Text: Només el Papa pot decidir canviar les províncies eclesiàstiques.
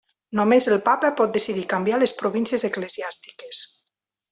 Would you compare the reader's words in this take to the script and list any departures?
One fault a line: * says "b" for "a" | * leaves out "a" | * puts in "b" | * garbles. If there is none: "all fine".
all fine